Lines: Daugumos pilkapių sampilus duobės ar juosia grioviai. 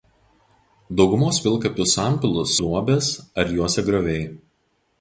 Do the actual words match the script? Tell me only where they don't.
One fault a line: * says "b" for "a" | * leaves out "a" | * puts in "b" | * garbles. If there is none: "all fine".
all fine